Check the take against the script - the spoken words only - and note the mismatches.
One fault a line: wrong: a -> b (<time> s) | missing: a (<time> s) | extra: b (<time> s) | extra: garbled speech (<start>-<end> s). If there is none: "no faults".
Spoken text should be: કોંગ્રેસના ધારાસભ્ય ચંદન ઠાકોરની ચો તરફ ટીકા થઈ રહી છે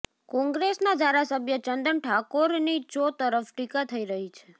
no faults